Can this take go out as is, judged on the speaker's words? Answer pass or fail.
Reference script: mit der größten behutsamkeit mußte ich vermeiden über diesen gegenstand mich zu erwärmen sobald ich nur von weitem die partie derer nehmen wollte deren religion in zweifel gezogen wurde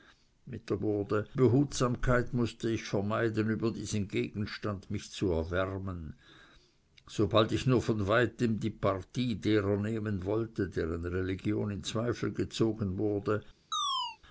fail